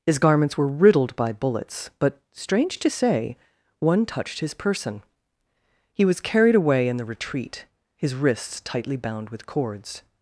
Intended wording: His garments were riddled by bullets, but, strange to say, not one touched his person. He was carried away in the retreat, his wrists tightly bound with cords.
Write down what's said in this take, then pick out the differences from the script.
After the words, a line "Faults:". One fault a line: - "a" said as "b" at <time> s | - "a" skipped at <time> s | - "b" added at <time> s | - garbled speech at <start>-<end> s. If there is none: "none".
His garments were riddled by bullets, but, strange to say, one touched his person. He was carried away in the retreat, his wrists tightly bound with cords.
Faults:
- "not" skipped at 3.4 s